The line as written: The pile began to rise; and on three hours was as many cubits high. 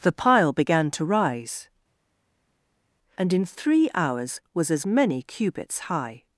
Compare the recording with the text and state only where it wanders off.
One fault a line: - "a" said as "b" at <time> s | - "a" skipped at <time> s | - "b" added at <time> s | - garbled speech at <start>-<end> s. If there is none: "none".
- "on" said as "in" at 3.3 s